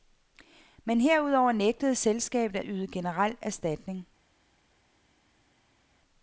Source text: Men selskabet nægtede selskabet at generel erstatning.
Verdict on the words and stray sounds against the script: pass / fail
fail